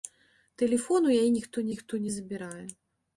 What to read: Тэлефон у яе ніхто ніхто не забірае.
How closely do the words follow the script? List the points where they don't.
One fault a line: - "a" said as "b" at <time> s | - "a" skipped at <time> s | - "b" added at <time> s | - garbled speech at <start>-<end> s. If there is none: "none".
none